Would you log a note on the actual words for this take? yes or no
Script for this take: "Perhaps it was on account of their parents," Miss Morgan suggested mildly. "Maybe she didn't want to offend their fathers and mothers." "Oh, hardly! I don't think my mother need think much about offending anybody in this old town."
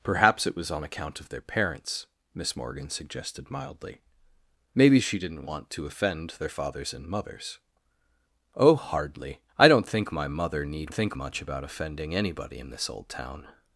no